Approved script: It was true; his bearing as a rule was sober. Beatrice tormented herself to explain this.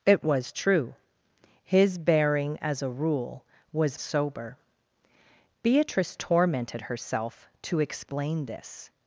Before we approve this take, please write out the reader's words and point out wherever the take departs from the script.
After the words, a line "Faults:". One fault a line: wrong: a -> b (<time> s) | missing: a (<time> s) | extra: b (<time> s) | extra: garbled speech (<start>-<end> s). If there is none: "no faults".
It was true; his bearing as a rule was sober. Beatrice tormented herself to explain this.
Faults:
no faults